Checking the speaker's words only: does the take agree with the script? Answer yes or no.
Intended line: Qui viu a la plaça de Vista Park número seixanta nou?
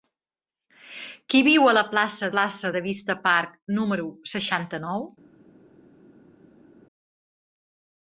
no